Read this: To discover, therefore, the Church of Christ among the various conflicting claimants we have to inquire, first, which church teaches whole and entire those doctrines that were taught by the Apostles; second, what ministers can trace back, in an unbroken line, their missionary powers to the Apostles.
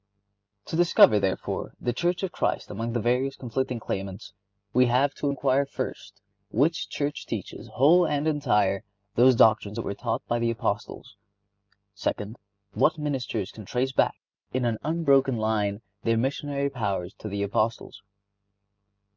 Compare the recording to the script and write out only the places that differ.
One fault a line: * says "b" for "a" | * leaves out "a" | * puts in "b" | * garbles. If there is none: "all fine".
all fine